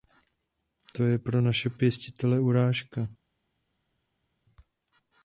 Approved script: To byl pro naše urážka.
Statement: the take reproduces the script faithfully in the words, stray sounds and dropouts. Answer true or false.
false